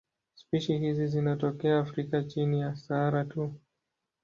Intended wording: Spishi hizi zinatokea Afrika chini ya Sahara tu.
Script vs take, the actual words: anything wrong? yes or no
no